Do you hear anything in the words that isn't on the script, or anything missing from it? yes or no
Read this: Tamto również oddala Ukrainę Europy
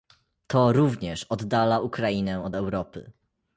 yes